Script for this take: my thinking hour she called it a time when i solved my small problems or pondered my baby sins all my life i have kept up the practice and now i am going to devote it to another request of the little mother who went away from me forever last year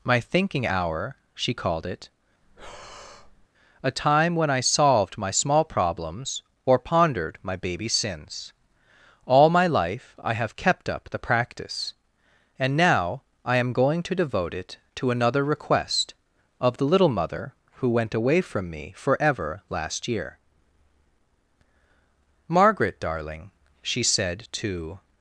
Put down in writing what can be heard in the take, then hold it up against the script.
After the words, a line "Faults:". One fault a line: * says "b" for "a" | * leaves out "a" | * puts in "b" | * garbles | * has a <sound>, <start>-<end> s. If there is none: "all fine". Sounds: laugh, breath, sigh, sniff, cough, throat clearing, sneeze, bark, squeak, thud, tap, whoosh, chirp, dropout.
my thinking hour she called it a time when i solved my small problems or pondered my baby sins all my life i have kept up the practice and now i am going to devote it to another request of the little mother who went away from me forever last year margaret darling she said to
Faults:
* has a breath, 2.4-3.5 s
* puts in "margaret darling she said to"